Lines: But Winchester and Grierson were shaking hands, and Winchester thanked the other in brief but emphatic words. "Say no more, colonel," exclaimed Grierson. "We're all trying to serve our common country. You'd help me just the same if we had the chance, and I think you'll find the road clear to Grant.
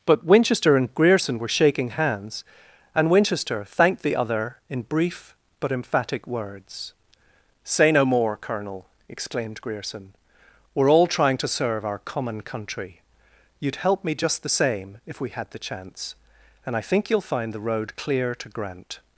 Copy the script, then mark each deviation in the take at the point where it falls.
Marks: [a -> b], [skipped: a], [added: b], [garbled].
But Winchester and Grierson were shaking hands, and Winchester thanked the other in brief but emphatic words. "Say no more, colonel," exclaimed Grierson. "We're all trying to serve our common country. You'd help me just the same if we had the chance, and I think you'll find the road clear to Grant.